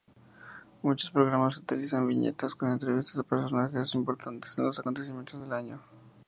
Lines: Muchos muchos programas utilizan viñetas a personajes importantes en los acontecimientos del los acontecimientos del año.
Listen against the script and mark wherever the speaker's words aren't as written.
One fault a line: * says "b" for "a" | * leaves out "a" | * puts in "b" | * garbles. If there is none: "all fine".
* leaves out "muchos"
* puts in "con entrevistas"
* leaves out "los acontecimientos del"